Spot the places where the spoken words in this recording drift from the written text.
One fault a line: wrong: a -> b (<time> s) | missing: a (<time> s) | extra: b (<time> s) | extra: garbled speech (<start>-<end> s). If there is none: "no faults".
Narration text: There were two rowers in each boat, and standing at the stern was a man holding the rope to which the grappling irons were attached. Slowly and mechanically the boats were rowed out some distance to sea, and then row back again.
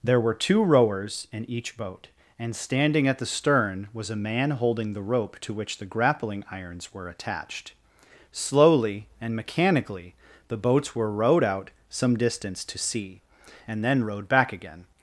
wrong: row -> rowed (14.0 s)